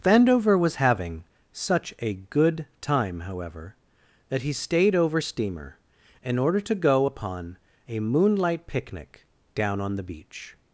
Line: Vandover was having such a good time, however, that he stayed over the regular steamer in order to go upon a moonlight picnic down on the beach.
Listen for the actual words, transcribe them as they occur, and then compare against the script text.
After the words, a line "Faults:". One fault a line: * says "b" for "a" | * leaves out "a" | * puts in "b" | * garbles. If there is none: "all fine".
Vandover was having such a good time, however, that he stayed over steamer in order to go upon a moonlight picnic down on the beach.
Faults:
* leaves out "the regular"